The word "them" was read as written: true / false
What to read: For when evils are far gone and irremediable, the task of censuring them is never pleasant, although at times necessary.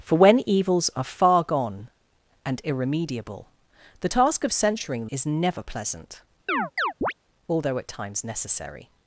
false